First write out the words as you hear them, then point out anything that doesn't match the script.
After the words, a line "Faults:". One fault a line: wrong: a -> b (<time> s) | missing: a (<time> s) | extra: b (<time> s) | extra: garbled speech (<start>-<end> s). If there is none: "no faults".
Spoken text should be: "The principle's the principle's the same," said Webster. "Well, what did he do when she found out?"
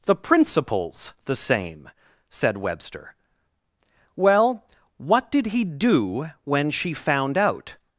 "The principle's the same," said Webster. "Well, what did he do when she found out?"
Faults:
missing: principle's the (1.4 s)